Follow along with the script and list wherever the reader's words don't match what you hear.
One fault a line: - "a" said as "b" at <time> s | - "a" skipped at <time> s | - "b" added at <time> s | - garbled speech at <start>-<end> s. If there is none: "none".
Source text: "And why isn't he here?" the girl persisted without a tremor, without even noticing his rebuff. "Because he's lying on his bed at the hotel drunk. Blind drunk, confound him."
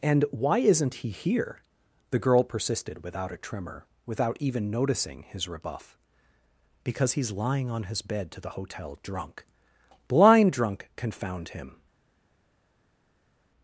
- "at" said as "to" at 8.3 s